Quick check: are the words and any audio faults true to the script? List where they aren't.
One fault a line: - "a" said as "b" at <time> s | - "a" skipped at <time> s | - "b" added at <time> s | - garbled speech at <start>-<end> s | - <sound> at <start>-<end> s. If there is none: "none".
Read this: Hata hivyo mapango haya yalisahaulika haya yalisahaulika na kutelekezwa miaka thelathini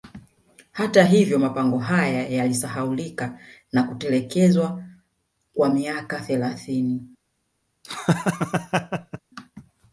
- "haya yalisahaulika" skipped at 3.4 s
- "kwa" added at 5.5 s
- laugh at 7.8-9.2 s